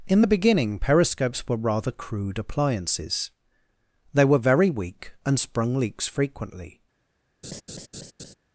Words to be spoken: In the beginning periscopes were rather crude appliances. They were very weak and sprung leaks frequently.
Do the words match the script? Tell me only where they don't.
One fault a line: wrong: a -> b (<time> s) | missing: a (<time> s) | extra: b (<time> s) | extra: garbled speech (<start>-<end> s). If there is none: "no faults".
no faults